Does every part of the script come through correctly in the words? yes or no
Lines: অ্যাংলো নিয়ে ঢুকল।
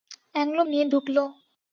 yes